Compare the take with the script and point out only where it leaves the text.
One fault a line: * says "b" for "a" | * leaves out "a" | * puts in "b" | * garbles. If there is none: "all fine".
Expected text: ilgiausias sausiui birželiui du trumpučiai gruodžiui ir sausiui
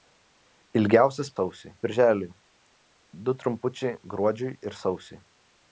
all fine